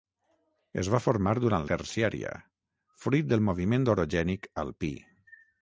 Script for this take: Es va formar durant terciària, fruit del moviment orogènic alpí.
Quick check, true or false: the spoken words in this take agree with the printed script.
true